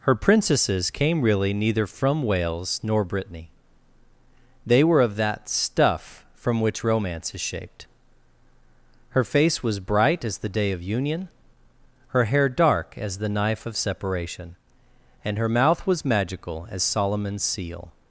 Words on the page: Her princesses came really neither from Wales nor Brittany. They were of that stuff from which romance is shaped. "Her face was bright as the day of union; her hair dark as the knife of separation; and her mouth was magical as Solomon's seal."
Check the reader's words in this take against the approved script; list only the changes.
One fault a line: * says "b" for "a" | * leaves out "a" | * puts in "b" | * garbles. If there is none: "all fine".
all fine